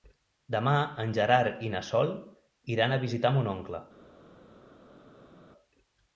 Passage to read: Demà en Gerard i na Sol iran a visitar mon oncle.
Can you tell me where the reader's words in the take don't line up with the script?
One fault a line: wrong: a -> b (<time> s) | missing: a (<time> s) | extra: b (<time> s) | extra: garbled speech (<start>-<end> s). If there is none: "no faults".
no faults